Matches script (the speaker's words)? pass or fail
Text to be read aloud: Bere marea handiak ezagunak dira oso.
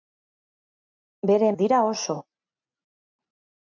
fail